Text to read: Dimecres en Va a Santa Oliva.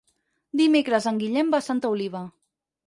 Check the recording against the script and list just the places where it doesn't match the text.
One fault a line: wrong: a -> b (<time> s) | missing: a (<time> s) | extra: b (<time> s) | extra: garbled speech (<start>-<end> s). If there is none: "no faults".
extra: Guillem (1.2 s)